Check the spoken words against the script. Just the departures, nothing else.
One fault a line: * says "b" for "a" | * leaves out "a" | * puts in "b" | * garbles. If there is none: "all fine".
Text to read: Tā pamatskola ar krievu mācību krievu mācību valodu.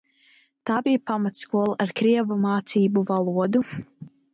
* puts in "bija"
* leaves out "krievu mācību"